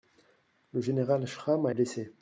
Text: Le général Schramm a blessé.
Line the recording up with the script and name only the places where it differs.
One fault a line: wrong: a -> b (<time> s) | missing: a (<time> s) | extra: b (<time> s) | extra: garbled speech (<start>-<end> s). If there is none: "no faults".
no faults